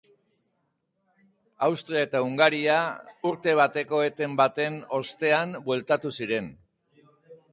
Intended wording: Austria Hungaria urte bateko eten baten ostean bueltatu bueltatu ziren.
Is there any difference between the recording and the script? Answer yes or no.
yes